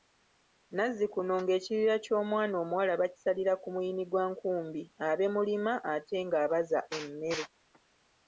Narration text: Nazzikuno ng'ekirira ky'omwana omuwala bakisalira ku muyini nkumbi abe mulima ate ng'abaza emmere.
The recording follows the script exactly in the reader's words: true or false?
false